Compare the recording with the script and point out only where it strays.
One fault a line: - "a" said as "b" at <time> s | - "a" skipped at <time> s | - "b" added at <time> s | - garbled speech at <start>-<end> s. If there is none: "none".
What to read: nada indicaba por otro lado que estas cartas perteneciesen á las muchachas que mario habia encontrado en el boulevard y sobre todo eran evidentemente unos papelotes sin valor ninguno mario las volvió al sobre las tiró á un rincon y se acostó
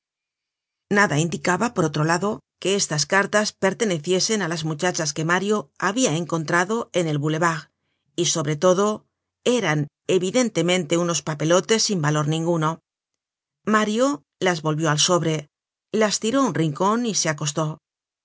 none